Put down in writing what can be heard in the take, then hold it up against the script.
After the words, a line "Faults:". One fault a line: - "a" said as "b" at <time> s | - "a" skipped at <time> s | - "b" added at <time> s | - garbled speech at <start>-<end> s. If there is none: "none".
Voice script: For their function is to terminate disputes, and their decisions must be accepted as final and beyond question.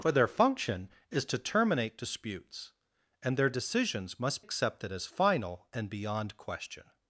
For their function is to terminate disputes, and their decisions must accepted as final and beyond question.
Faults:
- "be" skipped at 4.4 s